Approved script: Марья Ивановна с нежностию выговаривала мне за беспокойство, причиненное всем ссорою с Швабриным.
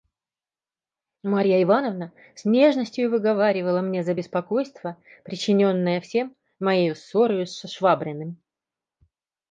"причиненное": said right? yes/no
yes